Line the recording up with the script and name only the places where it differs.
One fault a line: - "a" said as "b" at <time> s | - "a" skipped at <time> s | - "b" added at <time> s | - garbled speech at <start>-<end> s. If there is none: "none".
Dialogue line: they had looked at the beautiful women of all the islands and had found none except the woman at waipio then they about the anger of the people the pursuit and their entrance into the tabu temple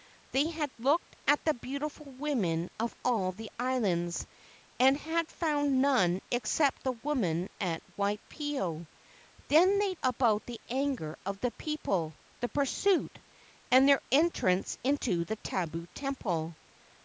none